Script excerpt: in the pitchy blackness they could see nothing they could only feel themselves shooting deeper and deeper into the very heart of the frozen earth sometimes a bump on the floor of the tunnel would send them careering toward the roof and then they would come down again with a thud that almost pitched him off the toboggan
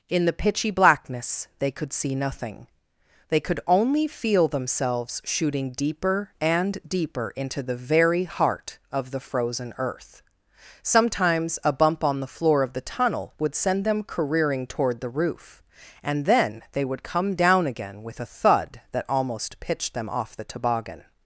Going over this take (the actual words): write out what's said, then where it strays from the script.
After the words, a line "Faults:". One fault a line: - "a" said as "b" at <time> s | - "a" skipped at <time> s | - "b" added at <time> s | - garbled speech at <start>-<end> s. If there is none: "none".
in the pitchy blackness they could see nothing they could only feel themselves shooting deeper and deeper into the very heart of the frozen earth sometimes a bump on the floor of the tunnel would send them careering toward the roof and then they would come down again with a thud that almost pitched them off the toboggan
Faults:
- "him" said as "them" at 19.9 s